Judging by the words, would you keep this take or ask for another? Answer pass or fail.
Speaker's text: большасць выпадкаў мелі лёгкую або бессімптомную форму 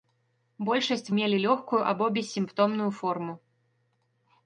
fail